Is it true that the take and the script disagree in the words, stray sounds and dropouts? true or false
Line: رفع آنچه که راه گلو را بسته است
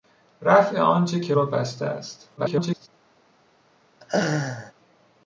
true